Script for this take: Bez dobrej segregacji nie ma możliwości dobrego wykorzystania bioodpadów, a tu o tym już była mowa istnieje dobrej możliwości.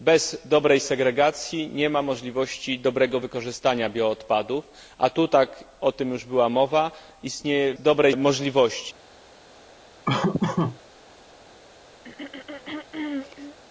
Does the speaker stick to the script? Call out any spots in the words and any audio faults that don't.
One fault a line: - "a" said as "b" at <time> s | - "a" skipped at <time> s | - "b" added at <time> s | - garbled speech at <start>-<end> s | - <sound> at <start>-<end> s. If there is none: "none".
- laugh at 10.1-10.8 s
- throat clearing at 12.0-13.6 s